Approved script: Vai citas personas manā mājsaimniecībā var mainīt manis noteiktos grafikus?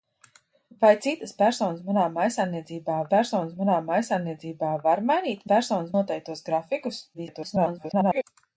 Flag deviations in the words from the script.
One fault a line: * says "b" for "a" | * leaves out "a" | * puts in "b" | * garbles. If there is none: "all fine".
* puts in "personas manā mājsaimniecībā"
* says "personas" for "manis"
* garbles